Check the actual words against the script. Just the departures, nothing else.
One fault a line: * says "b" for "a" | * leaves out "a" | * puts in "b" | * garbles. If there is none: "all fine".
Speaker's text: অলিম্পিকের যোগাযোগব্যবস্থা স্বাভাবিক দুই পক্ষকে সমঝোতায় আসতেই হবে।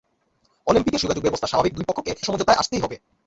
all fine